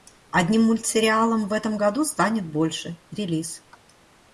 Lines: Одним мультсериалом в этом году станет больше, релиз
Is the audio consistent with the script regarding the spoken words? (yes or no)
yes